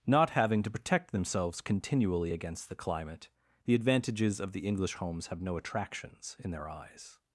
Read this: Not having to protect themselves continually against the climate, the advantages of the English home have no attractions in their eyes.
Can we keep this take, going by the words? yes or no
no